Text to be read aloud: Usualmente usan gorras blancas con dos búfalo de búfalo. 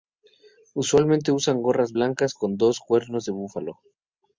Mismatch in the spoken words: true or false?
true